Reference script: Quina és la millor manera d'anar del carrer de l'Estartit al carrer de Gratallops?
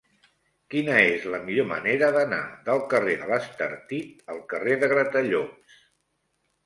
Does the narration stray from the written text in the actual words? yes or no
no